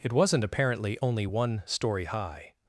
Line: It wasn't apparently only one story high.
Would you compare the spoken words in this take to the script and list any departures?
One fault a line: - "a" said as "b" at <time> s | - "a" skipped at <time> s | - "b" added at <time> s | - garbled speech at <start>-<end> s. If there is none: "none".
none